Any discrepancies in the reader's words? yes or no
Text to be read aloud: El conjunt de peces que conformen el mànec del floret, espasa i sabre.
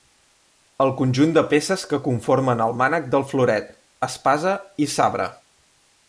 no